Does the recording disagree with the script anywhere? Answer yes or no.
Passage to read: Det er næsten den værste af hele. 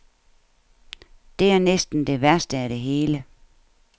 yes